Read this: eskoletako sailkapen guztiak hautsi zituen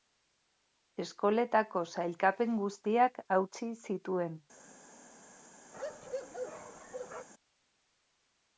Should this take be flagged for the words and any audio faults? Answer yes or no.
yes